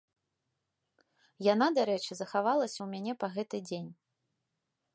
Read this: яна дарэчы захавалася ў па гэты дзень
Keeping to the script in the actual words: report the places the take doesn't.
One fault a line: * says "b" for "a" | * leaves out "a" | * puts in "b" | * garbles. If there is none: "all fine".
* puts in "мяне"